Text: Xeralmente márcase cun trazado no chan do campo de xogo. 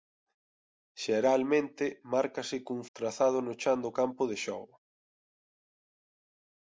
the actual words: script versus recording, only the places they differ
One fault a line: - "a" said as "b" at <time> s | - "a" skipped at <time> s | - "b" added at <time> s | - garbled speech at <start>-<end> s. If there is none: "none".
none